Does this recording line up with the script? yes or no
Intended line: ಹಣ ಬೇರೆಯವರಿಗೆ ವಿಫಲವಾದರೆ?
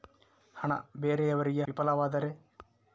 yes